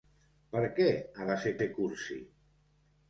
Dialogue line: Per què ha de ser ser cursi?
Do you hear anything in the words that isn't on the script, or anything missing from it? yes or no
no